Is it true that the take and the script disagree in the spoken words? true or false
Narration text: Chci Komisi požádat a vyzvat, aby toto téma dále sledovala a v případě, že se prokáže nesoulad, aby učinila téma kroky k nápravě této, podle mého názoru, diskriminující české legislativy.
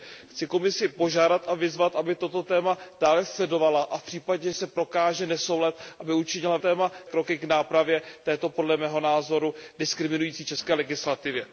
false